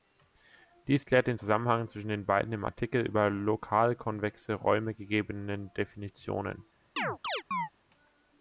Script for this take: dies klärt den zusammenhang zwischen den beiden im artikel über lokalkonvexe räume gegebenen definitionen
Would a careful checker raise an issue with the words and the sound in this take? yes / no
yes